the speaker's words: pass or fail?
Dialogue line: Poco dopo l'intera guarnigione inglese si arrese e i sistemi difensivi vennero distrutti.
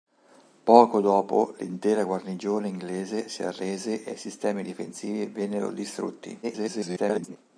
fail